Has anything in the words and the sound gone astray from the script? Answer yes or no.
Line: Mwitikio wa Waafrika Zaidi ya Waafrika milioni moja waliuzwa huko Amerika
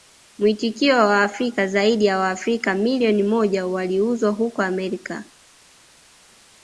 no